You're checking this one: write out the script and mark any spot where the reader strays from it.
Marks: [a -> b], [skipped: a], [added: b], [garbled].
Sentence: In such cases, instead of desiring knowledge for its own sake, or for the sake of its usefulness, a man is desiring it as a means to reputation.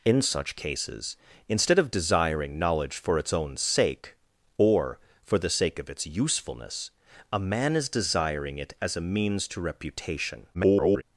In such cases, instead of desiring knowledge for its own sake, or for the sake of its usefulness, a man is desiring it as a means to reputation. [garbled]